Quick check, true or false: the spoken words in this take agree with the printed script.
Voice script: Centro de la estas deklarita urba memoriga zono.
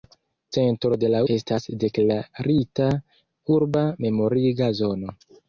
true